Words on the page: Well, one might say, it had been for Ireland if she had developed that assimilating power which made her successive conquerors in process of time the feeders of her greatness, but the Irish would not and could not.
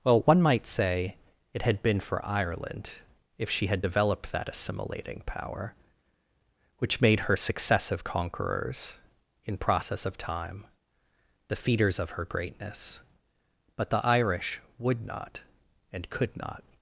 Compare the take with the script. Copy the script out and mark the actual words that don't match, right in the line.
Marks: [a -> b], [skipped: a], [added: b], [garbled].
Well, one might say, it had been for Ireland if she had developed that assimilating power which made her successive conquerors in process of time the feeders of her greatness, but the Irish would not and could not.